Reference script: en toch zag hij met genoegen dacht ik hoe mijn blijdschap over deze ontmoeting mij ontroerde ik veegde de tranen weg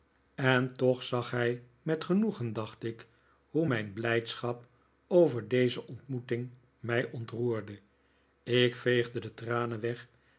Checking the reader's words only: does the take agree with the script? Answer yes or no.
yes